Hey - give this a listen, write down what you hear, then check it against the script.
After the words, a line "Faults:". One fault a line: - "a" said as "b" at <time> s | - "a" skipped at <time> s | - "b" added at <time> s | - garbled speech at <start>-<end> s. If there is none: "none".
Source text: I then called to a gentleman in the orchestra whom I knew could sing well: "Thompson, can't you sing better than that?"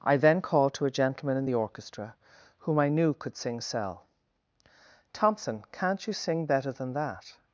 I then called to a gentleman in the orchestra whom I knew could sing cell: "Thompson, can't you sing better than that?"
Faults:
- "well" said as "cell" at 3.6 s